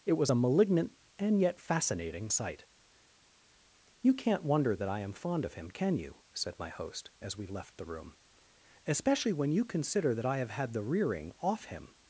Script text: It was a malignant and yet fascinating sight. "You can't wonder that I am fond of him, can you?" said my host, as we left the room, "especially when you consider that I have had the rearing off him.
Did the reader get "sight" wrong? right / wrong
right